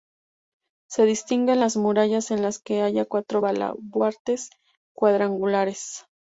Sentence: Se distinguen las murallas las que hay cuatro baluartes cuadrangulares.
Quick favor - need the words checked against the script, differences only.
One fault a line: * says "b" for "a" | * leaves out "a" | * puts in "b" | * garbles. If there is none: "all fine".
* puts in "en"